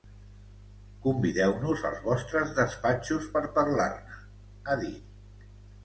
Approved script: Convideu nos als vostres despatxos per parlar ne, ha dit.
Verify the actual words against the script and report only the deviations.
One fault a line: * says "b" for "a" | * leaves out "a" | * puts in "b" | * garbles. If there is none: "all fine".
all fine